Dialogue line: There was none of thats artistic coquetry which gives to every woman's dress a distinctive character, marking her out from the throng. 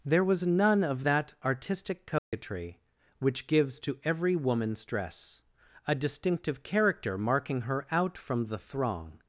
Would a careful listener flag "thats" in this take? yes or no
yes